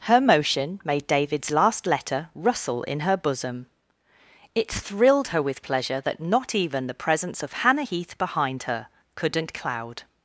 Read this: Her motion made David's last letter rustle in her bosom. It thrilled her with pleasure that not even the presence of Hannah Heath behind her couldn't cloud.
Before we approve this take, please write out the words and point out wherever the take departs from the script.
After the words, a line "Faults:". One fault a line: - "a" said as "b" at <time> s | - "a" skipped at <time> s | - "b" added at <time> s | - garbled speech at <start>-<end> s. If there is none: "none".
Her motion made David's last letter rustle in her bosom. It thrilled her with pleasure that not even the presence of Hannah Heath behind her couldn't cloud.
Faults:
none